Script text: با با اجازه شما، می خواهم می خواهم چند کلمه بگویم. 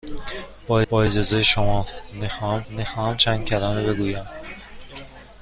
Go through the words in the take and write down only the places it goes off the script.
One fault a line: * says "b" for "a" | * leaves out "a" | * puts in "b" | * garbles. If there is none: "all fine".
all fine